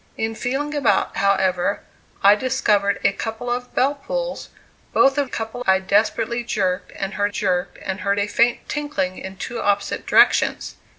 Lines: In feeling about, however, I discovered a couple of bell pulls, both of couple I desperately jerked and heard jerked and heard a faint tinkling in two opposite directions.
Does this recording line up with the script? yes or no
yes